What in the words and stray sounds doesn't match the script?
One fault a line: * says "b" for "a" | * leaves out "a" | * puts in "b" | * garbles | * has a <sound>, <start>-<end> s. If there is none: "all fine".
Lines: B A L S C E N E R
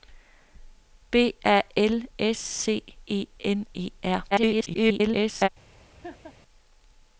* garbles
* has a laugh, 6.0-6.3 s